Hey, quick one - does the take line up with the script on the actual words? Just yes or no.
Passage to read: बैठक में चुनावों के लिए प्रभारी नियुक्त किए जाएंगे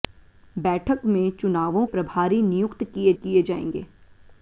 no